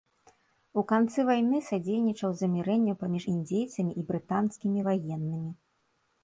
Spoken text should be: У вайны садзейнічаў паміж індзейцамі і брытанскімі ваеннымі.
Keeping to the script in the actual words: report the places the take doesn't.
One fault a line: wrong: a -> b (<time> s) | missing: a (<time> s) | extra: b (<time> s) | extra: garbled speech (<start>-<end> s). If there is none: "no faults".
extra: канцы (0.9 s)
extra: замірэнню (2.4 s)